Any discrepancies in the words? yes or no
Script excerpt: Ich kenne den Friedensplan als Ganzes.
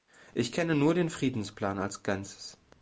yes